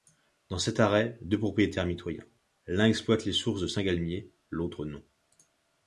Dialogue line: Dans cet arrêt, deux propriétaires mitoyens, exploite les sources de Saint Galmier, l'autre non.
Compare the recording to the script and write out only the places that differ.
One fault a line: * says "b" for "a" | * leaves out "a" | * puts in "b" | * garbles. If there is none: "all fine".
* puts in "l'un"